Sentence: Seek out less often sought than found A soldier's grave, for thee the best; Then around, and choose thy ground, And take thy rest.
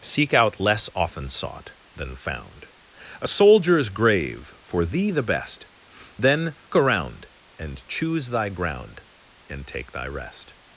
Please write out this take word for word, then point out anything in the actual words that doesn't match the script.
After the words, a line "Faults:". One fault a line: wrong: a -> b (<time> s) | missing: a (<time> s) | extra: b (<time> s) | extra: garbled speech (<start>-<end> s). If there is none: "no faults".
Seek out less often sought than found A soldier's grave, for thee the best; Then around, and choose thy ground, And take thy rest.
Faults:
no faults